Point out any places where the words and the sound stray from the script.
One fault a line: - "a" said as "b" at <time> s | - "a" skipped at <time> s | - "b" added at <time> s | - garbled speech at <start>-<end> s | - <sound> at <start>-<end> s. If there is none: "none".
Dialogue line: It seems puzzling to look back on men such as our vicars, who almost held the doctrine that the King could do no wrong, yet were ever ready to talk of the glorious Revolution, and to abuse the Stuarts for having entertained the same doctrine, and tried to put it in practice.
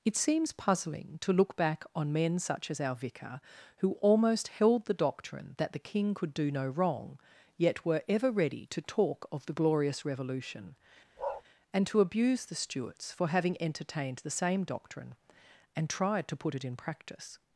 - "vicars" said as "vicar" at 3.0 s
- bark at 11.2-11.4 s